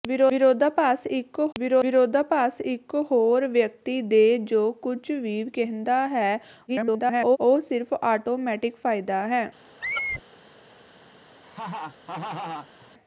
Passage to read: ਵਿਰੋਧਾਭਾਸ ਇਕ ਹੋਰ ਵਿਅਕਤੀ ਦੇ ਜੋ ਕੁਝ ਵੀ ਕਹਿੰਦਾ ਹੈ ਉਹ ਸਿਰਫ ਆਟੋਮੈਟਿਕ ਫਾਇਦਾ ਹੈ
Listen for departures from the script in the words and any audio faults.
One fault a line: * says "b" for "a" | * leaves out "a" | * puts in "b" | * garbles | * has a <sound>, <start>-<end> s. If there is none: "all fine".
* puts in "ਵਿਰੋਧਾਭਾਸ ਇਕ"
* garbles
* has a squeak, 9.8-10.2 s
* has a laugh, 11.4-12.9 s